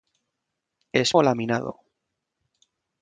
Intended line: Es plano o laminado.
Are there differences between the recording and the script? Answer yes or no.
yes